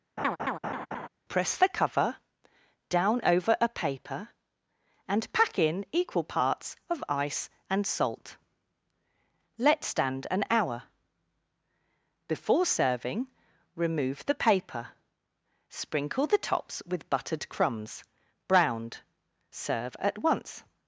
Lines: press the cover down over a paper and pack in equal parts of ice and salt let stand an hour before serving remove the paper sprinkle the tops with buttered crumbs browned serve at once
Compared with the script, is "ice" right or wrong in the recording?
right